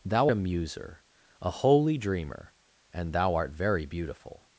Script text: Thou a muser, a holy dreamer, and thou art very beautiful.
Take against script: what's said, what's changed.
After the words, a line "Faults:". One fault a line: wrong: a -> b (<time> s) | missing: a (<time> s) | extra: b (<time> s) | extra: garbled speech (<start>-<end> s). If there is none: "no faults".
Thou a muser, a holy dreamer, and thou art very beautiful.
Faults:
no faults